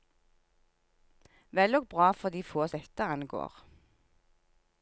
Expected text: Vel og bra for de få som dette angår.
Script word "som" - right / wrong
wrong